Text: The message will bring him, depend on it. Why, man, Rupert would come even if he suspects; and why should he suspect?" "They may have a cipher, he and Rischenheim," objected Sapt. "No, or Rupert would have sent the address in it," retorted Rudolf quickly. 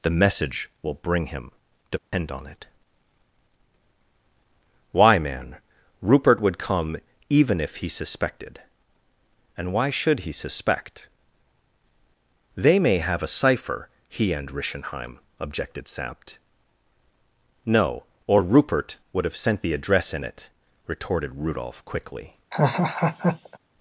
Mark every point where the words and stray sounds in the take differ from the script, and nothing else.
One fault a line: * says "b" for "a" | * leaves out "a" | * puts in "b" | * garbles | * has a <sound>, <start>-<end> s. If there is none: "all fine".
* has a dropout, 2.0-2.1 s
* says "suspected" for "suspects"
* has a laugh, 22.5-23.6 s